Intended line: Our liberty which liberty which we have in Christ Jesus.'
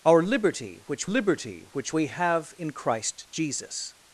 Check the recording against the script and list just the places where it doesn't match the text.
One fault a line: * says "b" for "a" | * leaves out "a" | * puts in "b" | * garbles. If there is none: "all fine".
all fine